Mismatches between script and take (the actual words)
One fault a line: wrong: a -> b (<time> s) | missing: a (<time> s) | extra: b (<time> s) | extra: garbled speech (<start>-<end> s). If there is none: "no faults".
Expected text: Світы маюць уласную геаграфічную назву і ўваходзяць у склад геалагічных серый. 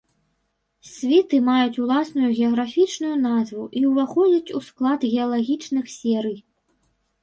no faults